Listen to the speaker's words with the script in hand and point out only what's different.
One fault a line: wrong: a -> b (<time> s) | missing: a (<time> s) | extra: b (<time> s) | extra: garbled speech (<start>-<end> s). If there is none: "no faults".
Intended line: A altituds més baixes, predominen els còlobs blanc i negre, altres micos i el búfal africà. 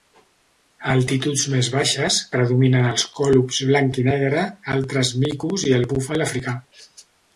no faults